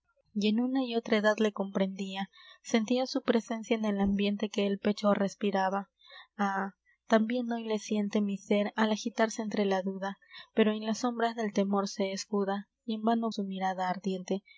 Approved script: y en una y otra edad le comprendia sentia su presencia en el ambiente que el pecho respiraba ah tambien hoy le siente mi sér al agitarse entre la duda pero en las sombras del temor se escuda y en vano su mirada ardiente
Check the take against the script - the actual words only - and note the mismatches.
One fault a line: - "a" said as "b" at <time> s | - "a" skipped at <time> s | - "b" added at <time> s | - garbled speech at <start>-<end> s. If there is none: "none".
none